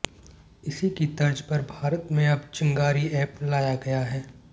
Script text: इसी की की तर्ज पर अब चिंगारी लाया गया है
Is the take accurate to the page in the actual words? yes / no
no